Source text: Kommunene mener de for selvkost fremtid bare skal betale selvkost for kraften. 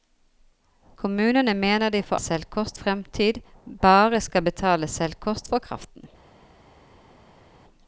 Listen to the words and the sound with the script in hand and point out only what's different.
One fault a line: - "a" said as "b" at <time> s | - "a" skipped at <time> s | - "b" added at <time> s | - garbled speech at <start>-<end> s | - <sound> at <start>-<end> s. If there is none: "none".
none